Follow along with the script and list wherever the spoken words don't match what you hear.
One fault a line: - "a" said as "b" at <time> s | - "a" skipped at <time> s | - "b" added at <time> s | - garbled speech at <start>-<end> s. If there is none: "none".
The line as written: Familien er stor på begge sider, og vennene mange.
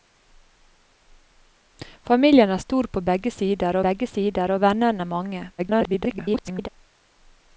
- "begge sider" added at 3.9 s
- garbled speech at 5.6-6.7 s